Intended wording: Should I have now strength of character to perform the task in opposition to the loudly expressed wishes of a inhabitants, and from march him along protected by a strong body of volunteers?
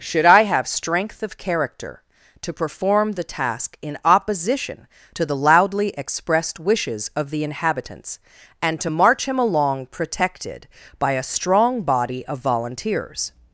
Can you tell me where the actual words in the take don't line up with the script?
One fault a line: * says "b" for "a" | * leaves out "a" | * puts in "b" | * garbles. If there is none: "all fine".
* leaves out "now"
* says "the" for "a"
* says "to" for "from"